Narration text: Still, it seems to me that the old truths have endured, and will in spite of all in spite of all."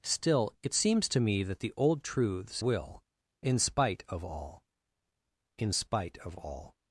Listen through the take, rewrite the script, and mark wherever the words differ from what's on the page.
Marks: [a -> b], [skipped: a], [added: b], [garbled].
Still, it seems to me that the old truths [skipped: have endured, and] will in spite of all in spite of all."